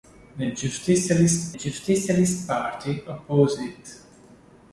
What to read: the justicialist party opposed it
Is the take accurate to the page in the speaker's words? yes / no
no